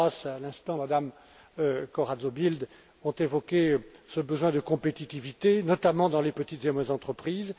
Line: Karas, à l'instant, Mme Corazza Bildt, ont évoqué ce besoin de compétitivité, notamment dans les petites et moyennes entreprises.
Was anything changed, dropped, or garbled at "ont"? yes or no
no